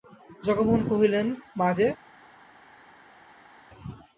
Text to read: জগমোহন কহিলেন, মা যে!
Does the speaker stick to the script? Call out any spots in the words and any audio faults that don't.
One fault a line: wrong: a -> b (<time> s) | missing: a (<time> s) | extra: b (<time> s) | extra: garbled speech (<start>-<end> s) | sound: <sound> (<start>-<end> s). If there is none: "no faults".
no faults